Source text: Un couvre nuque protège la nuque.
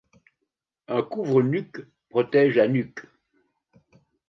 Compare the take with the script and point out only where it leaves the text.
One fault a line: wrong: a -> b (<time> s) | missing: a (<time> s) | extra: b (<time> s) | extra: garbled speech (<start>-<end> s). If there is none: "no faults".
no faults